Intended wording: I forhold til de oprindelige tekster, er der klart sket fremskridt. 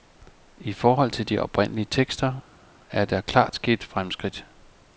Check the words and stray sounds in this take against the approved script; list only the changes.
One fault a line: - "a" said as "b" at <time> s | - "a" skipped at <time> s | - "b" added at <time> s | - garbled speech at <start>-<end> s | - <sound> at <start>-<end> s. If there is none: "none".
none